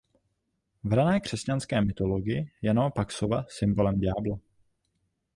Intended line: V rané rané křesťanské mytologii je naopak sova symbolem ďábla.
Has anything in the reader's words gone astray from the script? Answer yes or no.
yes